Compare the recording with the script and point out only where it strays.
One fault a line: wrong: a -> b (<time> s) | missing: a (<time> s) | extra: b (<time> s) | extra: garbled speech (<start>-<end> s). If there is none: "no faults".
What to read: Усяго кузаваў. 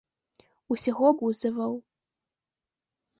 no faults